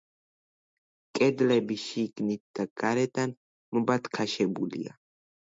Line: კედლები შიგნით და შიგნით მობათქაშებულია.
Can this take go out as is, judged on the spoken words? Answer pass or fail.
fail